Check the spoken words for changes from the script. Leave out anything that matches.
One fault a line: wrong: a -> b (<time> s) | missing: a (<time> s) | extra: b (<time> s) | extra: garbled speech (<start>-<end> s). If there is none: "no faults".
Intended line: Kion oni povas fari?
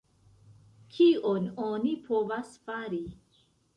no faults